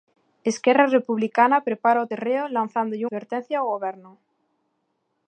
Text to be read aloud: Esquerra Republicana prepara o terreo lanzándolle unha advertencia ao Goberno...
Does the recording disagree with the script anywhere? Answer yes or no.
yes